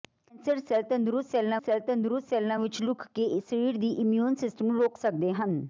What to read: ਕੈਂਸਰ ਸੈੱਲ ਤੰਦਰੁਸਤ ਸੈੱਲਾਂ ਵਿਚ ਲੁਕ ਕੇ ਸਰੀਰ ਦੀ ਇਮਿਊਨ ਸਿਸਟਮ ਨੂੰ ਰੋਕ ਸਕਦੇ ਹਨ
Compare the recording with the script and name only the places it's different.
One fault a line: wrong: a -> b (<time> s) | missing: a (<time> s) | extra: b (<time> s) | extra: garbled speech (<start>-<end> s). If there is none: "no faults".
extra: ਸੈੱਲ ਤੰਦਰੁਸਤ ਸੈੱਲਾਂ (1.6 s)